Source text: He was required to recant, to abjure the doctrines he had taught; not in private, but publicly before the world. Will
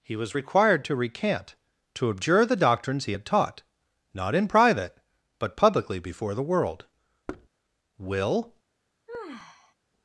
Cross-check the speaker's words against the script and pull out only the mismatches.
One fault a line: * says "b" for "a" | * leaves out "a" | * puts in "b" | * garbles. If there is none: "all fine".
all fine